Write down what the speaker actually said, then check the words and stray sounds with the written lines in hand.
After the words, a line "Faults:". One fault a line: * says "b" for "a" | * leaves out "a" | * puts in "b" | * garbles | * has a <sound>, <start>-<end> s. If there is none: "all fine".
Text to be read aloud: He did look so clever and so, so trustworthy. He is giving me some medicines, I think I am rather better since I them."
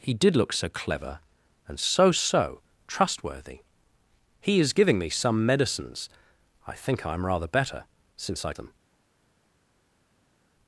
He did look so clever and so, so trustworthy. He is giving me some medicines, I think I am rather better since I them."
Faults:
all fine